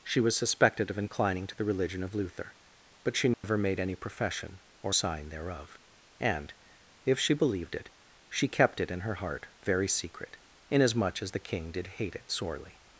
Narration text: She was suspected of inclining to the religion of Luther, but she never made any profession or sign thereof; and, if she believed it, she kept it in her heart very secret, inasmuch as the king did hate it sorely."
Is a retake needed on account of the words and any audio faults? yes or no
yes